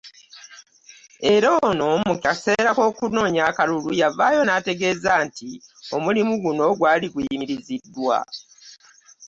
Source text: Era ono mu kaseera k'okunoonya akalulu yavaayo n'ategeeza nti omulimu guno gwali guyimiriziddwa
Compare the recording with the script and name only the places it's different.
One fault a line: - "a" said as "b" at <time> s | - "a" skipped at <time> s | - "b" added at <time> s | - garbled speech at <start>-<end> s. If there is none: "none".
none